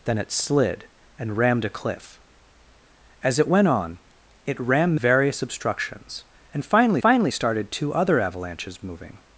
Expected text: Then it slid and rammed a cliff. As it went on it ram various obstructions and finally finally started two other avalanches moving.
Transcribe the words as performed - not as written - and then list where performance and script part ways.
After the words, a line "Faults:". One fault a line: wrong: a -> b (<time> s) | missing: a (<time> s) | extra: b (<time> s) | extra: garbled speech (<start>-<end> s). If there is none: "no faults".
Then it slid and rammed a cliff. As it went on it ram various obstructions and finally finally started two other avalanches moving.
Faults:
no faults